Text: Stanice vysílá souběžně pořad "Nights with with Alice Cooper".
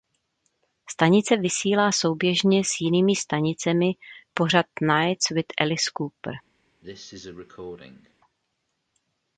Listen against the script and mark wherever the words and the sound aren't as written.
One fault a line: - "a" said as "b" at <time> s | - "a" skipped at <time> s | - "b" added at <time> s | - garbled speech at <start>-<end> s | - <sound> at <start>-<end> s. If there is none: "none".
- "s jinými stanicemi" added at 2.6 s
- "with" skipped at 5.5 s
- cough at 6.8-8.1 s